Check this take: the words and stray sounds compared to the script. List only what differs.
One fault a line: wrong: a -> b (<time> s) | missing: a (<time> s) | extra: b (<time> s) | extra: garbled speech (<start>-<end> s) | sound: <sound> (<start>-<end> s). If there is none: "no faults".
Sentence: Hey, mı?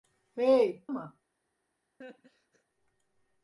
sound: laugh (2.0-2.6 s)